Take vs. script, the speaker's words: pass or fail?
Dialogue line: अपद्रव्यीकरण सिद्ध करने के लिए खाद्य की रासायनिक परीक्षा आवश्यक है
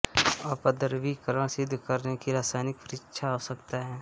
fail